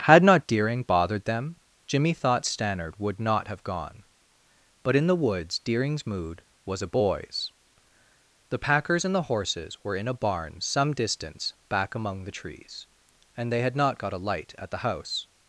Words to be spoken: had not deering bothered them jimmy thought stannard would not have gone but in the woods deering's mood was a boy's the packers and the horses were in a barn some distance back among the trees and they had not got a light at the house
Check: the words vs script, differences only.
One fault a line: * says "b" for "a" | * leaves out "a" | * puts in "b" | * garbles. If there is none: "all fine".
all fine